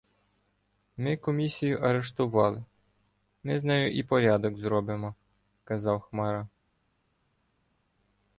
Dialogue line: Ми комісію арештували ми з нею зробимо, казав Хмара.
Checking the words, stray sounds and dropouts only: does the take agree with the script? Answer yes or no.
no